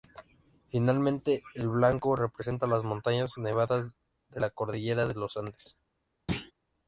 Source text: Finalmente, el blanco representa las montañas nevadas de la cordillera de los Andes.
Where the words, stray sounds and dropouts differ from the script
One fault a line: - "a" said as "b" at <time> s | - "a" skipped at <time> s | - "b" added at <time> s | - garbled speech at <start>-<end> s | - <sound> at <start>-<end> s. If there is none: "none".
- thud at 6.3-6.5 s